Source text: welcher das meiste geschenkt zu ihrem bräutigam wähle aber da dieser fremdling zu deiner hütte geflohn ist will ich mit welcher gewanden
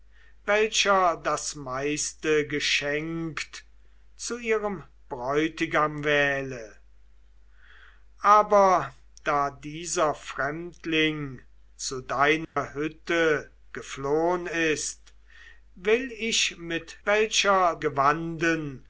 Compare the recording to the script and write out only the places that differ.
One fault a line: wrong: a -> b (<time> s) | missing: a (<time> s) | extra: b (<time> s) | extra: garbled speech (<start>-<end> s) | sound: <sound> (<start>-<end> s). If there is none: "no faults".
sound: dropout (12.4-12.6 s)